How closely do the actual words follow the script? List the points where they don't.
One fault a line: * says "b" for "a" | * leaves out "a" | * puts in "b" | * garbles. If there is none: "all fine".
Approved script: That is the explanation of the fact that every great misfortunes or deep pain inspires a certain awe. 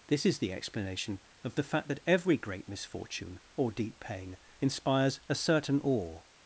* says "This" for "That"
* says "misfortune" for "misfortunes"